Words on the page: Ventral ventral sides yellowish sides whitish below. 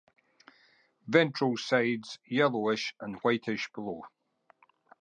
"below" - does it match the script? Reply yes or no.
yes